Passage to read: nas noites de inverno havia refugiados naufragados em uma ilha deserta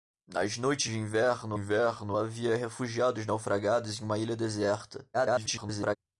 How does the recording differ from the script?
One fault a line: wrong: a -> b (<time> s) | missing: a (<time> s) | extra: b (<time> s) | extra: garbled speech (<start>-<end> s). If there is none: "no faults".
extra: inverno (1.5 s)
extra: garbled speech (5.1-6.0 s)